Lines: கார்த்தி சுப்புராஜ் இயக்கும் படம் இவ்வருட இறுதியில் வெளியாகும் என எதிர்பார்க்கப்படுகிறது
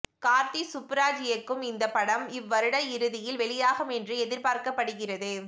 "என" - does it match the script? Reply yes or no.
no